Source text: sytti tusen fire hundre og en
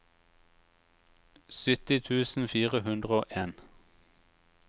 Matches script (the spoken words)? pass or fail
pass